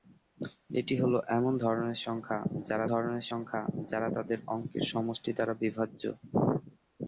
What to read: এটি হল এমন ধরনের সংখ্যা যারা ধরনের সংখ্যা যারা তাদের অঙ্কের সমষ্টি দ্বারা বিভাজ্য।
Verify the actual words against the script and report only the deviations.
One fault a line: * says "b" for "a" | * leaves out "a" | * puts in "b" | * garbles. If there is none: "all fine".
all fine